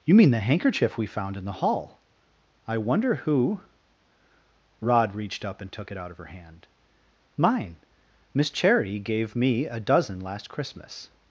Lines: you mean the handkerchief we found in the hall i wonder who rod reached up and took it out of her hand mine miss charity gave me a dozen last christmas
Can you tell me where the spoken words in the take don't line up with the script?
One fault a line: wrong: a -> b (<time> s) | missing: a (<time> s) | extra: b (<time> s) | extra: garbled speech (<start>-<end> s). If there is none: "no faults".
no faults